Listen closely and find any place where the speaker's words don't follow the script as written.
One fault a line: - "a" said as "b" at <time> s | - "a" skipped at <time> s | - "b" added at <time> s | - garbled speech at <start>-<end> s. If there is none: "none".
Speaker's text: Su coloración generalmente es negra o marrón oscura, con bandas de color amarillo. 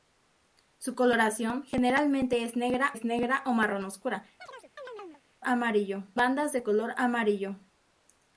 - "es negra" added at 2.9 s
- "con" said as "amarillo" at 5.4 s